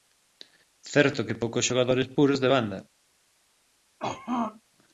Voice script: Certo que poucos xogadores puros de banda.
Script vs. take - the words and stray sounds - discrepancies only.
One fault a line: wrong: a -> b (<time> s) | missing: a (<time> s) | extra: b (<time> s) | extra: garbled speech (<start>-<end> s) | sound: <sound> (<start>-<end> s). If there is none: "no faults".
sound: throat clearing (4.0-4.6 s)